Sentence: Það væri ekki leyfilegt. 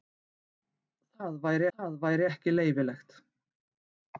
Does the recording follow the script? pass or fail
fail